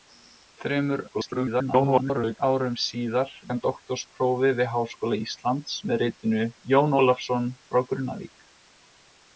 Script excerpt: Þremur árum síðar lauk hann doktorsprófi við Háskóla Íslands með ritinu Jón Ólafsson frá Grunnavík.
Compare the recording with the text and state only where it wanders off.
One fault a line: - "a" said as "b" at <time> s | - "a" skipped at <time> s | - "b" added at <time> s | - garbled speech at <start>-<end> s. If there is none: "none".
- garbled speech at 1.1-2.4 s
- "lauk" skipped at 3.3 s